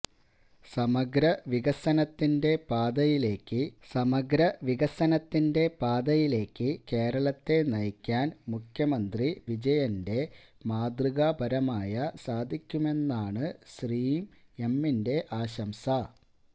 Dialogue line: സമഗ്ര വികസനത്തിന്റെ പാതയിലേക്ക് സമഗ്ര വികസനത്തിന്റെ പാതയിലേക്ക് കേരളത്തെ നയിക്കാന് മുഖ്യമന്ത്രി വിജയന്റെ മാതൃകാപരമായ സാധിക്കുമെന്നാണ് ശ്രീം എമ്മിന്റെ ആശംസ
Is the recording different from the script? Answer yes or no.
no